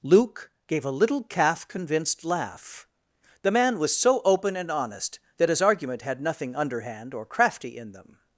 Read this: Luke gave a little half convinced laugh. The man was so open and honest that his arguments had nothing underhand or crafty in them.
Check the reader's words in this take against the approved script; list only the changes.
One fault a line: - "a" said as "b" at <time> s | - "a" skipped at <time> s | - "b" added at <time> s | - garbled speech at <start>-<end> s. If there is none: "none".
- "half" said as "calf" at 1.2 s
- "arguments" said as "argument" at 5.6 s